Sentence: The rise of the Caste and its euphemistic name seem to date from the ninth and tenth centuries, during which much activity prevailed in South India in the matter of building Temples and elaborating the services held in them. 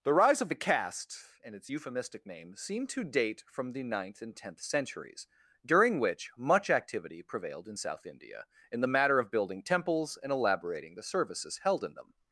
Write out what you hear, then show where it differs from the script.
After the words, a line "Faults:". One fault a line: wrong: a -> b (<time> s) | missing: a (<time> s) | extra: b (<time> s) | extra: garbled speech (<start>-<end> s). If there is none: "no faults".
The rise of the Caste and its euphemistic name seem to date from the ninth and tenth centuries, during which much activity prevailed in South India in the matter of building Temples and elaborating the services held in them.
Faults:
no faults